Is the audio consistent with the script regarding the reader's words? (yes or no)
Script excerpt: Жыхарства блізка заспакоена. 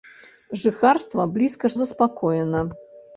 yes